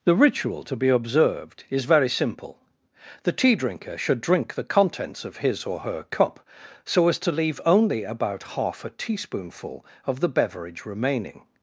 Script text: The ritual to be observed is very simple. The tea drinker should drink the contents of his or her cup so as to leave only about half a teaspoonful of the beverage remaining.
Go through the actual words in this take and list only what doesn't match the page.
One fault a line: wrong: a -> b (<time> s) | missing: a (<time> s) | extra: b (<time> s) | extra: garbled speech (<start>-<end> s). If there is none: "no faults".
no faults